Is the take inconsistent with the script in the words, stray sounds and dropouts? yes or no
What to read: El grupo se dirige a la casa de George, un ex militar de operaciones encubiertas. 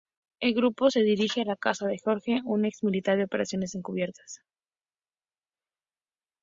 no